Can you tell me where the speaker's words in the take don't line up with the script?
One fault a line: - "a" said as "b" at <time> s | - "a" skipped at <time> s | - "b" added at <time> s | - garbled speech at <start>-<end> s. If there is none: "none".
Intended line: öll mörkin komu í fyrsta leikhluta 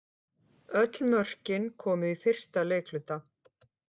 none